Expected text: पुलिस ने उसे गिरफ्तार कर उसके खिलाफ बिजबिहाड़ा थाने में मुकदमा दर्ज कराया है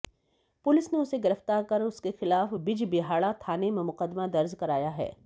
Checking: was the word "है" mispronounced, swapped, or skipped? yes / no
no